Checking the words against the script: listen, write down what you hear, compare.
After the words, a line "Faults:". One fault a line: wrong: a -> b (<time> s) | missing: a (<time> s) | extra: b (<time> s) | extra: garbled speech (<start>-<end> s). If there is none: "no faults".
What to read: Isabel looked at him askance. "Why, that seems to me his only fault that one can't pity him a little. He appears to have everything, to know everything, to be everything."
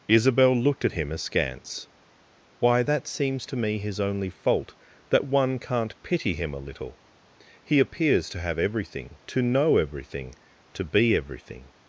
Isabel looked at him askance. "Why, that seems to me his only fault that one can't pity him a little. He appears to have everything, to know everything, to be everything."
Faults:
no faults